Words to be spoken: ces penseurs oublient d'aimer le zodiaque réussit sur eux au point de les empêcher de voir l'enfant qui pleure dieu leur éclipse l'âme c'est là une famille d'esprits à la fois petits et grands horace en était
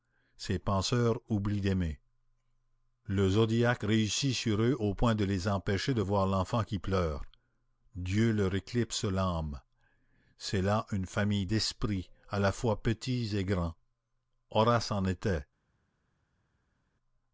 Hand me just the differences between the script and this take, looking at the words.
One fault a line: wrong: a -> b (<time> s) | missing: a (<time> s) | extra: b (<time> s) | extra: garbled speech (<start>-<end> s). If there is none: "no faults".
no faults